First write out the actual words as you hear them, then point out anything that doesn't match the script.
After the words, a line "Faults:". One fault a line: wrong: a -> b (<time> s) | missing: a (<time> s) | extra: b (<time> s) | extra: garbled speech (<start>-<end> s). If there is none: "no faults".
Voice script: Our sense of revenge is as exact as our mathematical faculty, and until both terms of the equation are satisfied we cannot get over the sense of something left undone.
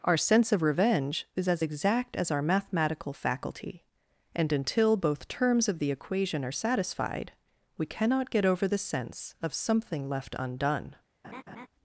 Our sense of revenge is as exact as our mathematical faculty, and until both terms of the equation are satisfied we cannot get over the sense of something left undone.
Faults:
no faults